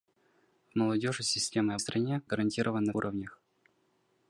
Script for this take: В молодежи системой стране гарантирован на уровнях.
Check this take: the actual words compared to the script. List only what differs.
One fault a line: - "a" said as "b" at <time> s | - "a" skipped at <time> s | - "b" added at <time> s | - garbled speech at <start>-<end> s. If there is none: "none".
none